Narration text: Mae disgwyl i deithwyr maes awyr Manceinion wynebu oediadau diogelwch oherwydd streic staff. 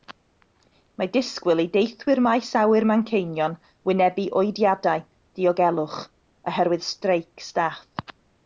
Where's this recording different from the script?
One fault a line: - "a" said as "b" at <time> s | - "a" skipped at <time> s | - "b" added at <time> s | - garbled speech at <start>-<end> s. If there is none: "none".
none